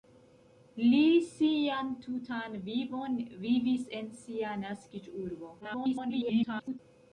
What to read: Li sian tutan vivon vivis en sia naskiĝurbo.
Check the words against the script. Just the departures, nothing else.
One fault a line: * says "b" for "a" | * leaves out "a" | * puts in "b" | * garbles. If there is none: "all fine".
* garbles